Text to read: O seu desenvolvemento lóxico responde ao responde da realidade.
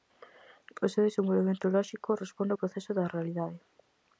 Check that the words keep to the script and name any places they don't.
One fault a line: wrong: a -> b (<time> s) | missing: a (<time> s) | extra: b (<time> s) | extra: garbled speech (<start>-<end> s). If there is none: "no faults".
wrong: responde -> proceso (2.6 s)